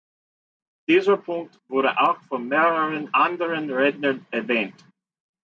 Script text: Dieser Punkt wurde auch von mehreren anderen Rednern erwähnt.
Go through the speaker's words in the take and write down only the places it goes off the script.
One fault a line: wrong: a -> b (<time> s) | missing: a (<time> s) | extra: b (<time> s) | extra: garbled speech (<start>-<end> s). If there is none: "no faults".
no faults